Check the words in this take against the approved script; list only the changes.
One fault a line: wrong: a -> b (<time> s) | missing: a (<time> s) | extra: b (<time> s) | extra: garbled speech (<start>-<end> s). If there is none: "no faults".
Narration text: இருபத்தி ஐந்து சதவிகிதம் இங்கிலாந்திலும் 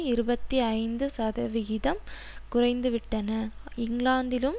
extra: குறைந்துவிட்டன (2.5 s)